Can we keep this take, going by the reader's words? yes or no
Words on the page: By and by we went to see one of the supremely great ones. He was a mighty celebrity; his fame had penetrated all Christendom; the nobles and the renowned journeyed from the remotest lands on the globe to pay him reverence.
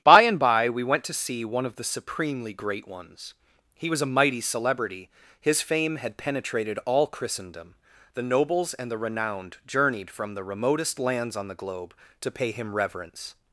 yes